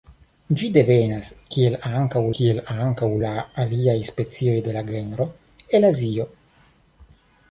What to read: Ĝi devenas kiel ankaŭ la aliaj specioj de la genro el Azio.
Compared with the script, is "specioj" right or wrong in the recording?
right